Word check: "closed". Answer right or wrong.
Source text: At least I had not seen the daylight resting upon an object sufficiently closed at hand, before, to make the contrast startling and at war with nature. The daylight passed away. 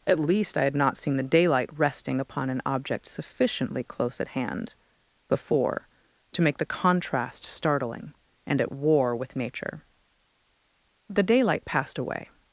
wrong